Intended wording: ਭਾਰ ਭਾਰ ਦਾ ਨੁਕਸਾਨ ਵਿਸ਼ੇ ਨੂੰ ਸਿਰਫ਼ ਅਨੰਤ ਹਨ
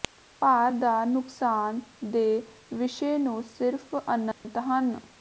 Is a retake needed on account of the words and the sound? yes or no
yes